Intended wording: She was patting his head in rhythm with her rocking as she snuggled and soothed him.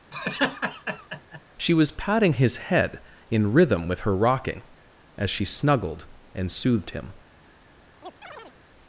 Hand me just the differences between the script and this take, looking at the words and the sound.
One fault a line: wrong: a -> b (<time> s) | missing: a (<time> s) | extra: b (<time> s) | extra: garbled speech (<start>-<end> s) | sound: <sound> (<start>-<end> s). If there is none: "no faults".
sound: laugh (0.1-1.4 s)
sound: chirp (8.0-8.6 s)